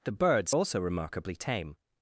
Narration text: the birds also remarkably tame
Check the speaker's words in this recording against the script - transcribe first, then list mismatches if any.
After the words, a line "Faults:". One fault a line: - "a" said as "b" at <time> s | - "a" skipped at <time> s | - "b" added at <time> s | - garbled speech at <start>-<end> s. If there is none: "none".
the birds also remarkably tame
Faults:
none